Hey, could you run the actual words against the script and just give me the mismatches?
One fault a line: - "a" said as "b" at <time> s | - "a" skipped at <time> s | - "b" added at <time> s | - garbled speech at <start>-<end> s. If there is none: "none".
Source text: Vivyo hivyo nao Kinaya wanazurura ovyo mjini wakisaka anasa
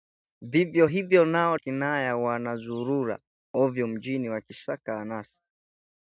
none